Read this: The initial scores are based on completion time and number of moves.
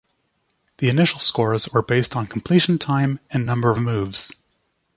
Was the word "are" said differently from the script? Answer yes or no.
yes